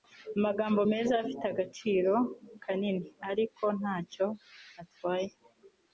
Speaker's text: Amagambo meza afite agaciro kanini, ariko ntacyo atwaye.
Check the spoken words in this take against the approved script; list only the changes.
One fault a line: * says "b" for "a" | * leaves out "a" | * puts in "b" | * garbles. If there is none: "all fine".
all fine